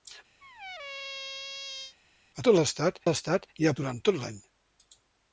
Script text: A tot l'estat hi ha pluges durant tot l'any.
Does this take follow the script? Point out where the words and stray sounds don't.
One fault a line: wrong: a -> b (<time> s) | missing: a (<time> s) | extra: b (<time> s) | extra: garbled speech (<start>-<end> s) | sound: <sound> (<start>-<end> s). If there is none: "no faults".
sound: squeak (0.4-2.0 s)
extra: l'estat (3.1 s)
missing: pluges (3.7 s)